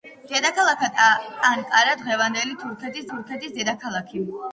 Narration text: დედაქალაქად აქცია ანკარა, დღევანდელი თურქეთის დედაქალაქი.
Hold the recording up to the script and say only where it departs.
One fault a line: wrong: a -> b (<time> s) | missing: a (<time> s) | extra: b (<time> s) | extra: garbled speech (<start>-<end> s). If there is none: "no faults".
missing: აქცია (0.9 s)
extra: თურქეთის (3.1 s)